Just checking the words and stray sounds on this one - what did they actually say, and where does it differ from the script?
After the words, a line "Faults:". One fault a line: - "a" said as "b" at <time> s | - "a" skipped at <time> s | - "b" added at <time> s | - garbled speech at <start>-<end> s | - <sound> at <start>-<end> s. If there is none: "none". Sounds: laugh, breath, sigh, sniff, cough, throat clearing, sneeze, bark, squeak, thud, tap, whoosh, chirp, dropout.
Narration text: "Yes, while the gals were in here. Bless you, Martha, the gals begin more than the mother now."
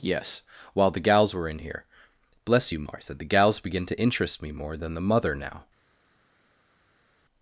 "Yes, while the gals were in here. Bless you, Martha, the gals begin to interest me more than the mother now."
Faults:
- "to interest me" added at 3.9 s